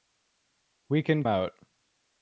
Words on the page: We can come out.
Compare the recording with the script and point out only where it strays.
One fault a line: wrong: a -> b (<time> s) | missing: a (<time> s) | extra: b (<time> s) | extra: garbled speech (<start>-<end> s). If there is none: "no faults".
missing: come (1.2 s)